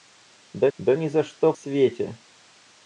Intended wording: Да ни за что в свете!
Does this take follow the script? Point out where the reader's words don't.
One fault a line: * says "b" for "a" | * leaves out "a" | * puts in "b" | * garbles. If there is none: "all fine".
* puts in "да"
* leaves out "в"